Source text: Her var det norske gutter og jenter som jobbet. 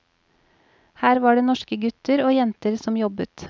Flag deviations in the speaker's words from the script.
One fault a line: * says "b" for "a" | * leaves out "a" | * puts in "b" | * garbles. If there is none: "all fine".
all fine